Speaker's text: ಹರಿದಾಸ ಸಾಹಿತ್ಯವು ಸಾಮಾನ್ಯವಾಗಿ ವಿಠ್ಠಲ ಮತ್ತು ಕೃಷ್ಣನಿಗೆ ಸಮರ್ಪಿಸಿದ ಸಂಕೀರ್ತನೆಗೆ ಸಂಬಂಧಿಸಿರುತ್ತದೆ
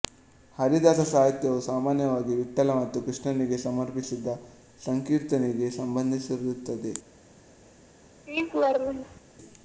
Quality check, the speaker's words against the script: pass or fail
pass